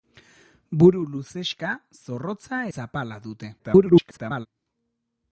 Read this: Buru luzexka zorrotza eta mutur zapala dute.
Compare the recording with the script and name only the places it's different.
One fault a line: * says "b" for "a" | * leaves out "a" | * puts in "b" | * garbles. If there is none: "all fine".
* leaves out "eta mutur"
* garbles